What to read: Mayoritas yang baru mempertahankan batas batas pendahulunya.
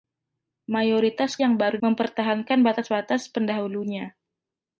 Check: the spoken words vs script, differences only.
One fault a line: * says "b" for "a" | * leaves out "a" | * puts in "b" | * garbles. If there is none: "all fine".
all fine